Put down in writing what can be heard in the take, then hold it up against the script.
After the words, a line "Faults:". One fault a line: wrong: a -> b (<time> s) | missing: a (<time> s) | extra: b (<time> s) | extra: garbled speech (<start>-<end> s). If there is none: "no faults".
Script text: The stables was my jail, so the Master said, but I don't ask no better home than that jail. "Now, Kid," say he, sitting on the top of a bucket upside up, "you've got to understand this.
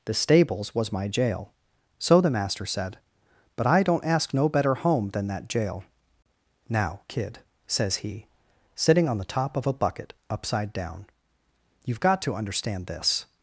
The stables was my jail, so the Master said, but I don't ask no better home than that jail. "Now, Kid," says he, sitting on the top of a bucket upside down, "you've got to understand this.
Faults:
wrong: say -> says (7.7 s)
wrong: up -> down (10.7 s)